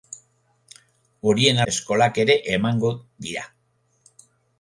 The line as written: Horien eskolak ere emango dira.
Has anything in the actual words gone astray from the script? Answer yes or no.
no